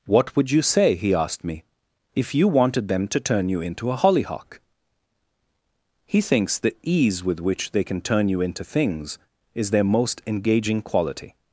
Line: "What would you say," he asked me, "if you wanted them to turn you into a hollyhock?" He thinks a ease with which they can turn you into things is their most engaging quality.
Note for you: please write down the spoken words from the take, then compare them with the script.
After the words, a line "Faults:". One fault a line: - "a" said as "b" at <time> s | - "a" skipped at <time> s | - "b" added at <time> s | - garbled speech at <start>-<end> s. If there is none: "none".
"What would you say," he asked me, "if you wanted them to turn you into a hollyhock?" He thinks the ease with which they can turn you into things is their most engaging quality.
Faults:
- "a" said as "the" at 6.6 s